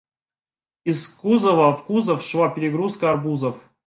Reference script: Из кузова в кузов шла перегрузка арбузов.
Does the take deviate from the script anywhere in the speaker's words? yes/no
no